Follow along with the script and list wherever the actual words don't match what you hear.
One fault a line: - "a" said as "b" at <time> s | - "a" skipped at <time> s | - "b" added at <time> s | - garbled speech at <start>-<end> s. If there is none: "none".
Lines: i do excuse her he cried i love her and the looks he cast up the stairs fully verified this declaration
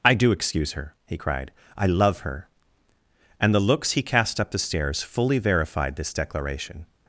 none